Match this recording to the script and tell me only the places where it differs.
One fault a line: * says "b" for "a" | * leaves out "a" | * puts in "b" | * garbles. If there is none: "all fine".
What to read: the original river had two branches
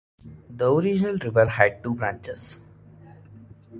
all fine